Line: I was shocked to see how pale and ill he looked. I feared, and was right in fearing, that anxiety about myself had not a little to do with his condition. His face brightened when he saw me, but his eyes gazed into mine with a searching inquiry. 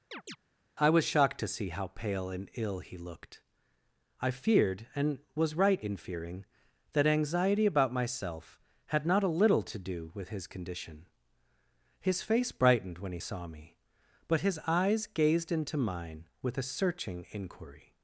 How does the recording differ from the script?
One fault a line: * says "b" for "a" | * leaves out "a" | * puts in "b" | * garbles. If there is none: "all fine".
all fine